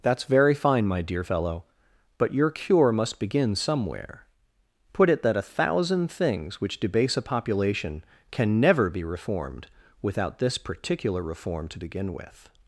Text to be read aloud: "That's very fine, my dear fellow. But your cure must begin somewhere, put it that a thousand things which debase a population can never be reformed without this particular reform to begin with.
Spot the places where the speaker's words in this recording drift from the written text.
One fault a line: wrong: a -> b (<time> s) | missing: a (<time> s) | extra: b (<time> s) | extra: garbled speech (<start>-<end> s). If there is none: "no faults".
no faults